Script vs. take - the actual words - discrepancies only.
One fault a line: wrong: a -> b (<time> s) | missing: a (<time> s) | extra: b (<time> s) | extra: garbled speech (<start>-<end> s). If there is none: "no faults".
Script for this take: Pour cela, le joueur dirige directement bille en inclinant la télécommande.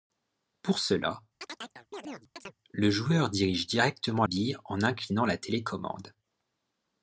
no faults